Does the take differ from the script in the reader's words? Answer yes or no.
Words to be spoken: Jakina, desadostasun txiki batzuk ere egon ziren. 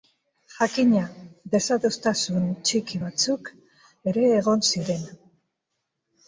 no